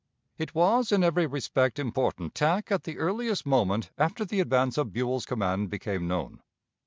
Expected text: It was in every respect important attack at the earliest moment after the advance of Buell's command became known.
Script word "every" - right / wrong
right